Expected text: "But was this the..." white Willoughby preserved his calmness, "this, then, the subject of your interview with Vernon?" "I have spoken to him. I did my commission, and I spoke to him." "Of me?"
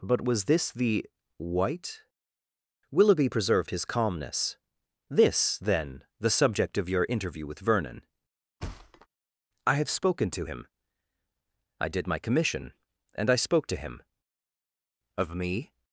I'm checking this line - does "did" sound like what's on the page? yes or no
yes